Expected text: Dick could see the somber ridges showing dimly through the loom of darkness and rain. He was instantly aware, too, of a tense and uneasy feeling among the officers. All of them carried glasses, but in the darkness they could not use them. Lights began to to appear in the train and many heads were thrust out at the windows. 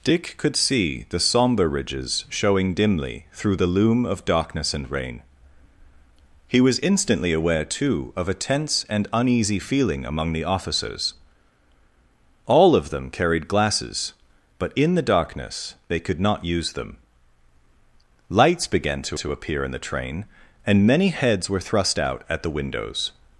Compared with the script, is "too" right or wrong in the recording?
right